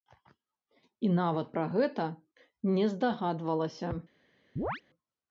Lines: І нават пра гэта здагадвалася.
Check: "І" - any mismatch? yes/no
no